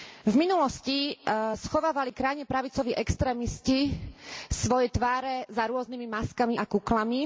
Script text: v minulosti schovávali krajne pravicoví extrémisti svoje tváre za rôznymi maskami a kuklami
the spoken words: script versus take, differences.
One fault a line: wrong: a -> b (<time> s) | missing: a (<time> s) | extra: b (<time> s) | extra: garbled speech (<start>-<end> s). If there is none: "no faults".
no faults